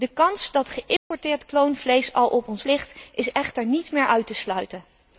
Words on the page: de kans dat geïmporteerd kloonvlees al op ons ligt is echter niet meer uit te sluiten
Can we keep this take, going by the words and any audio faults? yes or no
no